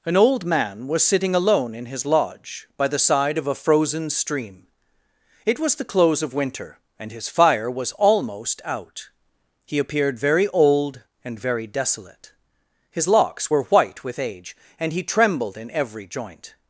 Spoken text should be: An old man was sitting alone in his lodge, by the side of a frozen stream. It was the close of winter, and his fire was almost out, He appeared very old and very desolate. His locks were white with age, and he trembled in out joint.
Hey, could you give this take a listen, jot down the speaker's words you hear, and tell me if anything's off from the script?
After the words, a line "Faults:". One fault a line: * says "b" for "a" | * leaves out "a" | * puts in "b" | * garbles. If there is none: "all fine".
An old man was sitting alone in his lodge, by the side of a frozen stream. It was the close of winter, and his fire was almost out, He appeared very old and very desolate. His locks were white with age, and he trembled in every joint.
Faults:
* says "every" for "out"